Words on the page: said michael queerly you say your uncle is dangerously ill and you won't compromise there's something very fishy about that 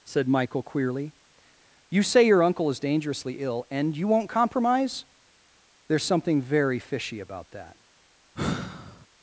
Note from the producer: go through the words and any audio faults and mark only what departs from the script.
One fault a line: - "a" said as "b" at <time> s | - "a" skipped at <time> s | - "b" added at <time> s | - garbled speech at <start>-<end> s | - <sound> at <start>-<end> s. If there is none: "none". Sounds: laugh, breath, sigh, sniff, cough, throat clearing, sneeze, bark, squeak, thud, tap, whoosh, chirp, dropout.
- sigh at 8.3-9.1 s